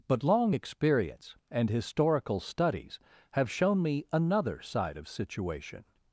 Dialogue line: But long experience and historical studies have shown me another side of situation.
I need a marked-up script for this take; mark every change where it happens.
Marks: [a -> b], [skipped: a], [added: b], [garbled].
But long experience and historical studies have shown me another side of situation.